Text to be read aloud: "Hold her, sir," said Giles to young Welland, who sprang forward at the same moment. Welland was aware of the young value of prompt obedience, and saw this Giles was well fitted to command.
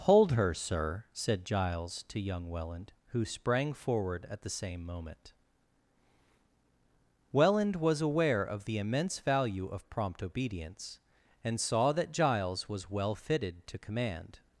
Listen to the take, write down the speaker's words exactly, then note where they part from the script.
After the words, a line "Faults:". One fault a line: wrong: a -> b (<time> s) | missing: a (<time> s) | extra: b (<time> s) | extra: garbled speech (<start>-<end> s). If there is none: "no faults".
"Hold her, sir," said Giles to young Welland, who sprang forward at the same moment. Welland was aware of the immense value of prompt obedience, and saw that Giles was well fitted to command.
Faults:
wrong: young -> immense (8.8 s)
wrong: this -> that (11.9 s)